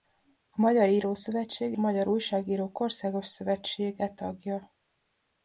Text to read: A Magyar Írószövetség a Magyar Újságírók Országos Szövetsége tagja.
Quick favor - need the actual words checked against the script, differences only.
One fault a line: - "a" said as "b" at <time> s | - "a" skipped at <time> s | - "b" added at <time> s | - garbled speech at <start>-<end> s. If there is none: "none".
none